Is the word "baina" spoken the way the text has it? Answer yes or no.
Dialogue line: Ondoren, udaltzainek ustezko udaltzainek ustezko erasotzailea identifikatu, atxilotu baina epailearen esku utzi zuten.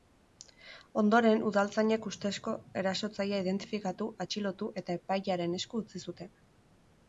no